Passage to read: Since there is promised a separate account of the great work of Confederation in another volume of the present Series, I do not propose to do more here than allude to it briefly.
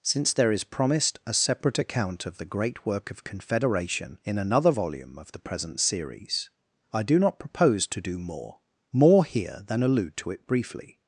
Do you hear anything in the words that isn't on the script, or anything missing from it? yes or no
yes